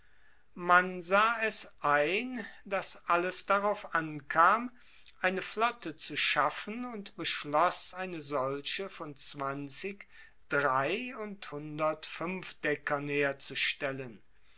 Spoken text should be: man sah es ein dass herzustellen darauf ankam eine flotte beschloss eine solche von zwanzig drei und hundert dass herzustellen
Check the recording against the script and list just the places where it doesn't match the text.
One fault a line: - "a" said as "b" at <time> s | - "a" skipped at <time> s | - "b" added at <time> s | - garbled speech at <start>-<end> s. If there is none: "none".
- "herzustellen" said as "alles" at 3.1 s
- "zu schaffen und" added at 6.0 s
- "dass" said as "fuenfdeckern" at 12.1 s